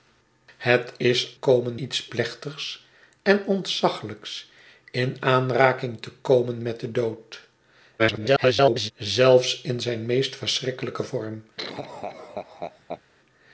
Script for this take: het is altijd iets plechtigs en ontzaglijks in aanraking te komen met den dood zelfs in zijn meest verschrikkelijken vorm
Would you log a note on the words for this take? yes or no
yes